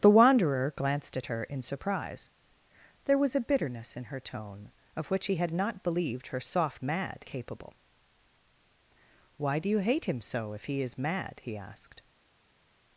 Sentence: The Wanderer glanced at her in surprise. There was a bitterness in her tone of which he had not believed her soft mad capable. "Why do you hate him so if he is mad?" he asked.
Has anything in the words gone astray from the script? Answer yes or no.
no